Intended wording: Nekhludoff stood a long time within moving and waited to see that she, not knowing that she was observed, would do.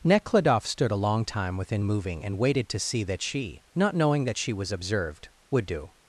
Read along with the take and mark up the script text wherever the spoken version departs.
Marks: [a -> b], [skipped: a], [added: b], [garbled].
Nekhludoff stood a long time within moving and waited to see that she, not knowing that she was observed, would do.